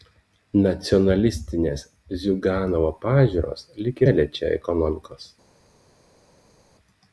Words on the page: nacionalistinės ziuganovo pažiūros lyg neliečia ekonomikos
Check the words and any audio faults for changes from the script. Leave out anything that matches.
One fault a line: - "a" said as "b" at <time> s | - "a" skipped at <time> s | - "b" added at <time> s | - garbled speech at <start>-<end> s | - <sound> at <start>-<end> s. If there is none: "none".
none